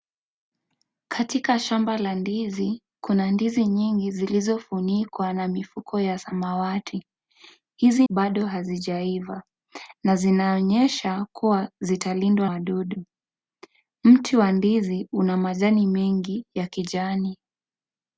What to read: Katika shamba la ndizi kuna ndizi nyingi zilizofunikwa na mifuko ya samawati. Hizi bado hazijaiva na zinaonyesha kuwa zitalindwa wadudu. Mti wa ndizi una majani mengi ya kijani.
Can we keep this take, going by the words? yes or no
yes